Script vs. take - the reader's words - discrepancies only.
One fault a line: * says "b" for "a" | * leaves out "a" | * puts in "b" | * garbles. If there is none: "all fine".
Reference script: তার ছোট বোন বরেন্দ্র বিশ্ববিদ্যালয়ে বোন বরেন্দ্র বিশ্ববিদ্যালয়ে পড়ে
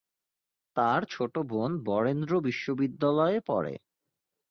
* leaves out "বোন বরেন্দ্র বিশ্ববিদ্যালয়ে"